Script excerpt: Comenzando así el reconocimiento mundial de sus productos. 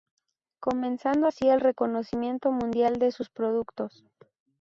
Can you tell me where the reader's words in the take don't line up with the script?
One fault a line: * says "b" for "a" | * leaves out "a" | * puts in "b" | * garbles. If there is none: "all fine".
all fine